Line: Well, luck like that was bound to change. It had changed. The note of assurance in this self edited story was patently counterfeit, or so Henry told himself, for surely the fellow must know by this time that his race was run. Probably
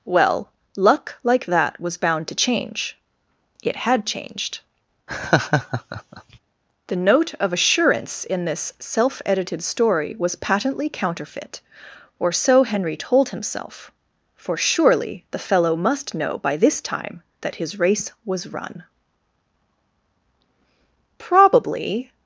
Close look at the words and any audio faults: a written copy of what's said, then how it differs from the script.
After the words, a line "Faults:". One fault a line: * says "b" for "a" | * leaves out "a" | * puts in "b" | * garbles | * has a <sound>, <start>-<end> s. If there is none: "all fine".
Well, luck like that was bound to change. It had changed. The note of assurance in this self edited story was patently counterfeit, or so Henry told himself, for surely the fellow must know by this time that his race was run. Probably
Faults:
* has a laugh, 5.1-6.4 s